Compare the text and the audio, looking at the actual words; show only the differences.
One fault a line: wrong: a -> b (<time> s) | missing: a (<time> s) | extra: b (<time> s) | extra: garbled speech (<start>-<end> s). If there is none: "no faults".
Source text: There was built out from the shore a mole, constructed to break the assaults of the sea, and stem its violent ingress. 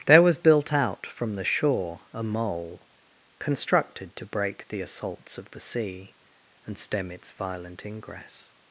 no faults